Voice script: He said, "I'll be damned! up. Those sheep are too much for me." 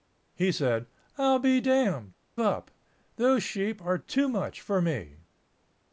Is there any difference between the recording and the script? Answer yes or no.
no